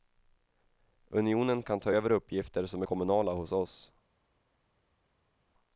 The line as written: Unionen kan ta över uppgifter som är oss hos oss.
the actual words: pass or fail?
fail